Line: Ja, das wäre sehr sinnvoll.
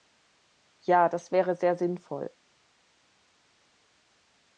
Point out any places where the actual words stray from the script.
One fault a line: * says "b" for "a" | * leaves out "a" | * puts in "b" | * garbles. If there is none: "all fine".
all fine